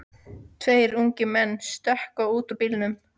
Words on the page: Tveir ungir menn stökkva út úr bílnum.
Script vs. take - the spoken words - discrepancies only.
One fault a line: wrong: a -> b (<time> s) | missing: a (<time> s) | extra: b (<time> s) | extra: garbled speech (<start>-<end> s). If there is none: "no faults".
no faults